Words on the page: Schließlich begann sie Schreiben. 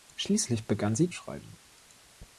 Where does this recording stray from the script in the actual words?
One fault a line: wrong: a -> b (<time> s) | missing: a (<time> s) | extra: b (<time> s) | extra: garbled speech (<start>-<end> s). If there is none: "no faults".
no faults